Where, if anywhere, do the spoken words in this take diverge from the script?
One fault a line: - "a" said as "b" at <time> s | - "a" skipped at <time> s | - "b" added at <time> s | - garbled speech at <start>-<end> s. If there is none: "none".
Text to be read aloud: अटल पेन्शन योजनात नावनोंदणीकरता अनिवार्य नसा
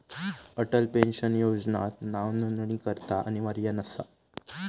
none